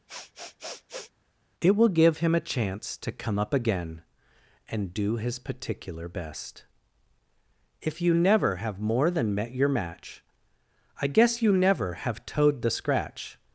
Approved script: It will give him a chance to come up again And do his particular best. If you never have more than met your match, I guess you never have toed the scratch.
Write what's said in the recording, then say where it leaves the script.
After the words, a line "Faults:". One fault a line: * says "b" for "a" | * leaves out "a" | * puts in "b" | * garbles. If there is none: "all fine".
It will give him a chance to come up again And do his particular best. If you never have more than met your match, I guess you never have toed the scratch.
Faults:
all fine